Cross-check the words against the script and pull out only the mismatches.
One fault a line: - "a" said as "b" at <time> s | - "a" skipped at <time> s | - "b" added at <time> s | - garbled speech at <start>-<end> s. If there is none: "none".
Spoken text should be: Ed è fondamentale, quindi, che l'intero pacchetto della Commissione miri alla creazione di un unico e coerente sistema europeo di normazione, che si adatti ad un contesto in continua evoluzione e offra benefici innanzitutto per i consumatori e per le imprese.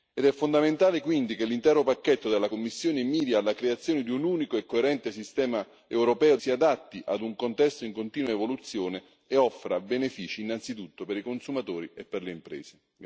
- "di normazione che" skipped at 6.4 s